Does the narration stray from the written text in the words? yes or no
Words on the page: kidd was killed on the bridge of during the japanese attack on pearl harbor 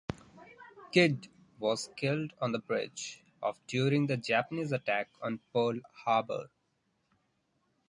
no